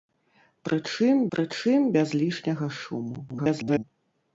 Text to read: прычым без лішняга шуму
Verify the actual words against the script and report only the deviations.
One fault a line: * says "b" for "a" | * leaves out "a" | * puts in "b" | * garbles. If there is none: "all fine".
* puts in "прычым"
* garbles